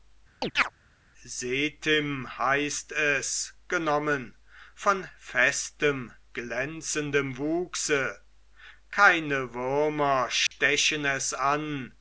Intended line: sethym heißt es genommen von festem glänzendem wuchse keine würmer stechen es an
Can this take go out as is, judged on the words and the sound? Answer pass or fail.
fail